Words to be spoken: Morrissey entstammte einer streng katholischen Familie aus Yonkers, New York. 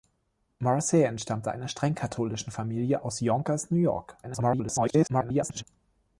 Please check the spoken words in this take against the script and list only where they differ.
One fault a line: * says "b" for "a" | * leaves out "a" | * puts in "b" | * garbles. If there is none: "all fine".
* garbles